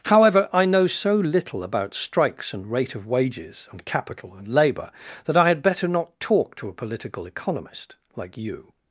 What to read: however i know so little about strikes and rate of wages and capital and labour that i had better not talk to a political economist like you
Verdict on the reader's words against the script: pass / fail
pass